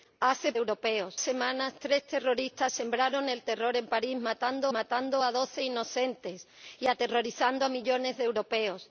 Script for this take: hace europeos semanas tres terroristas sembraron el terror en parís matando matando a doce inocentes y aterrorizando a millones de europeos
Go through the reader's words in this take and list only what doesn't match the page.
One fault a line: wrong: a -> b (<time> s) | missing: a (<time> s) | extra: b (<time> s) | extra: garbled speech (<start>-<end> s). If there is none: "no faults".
no faults